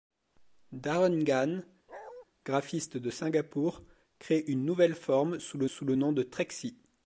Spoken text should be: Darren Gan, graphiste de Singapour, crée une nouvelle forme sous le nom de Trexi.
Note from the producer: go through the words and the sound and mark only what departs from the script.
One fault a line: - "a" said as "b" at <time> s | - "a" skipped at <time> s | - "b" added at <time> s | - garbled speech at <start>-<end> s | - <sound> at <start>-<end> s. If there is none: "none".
- bark at 1.9-2.3 s
- "sous le" added at 5.7 s